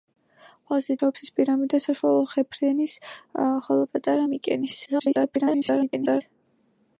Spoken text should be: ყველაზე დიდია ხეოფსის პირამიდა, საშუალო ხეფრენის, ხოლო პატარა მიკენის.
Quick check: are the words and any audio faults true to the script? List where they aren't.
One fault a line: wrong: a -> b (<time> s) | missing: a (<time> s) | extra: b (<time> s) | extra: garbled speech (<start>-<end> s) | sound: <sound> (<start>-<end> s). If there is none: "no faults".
missing: დიდია (0.9 s)
extra: garbled speech (4.8-6.2 s)